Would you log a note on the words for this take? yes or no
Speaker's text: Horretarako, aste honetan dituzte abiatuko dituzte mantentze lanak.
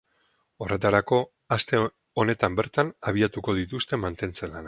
yes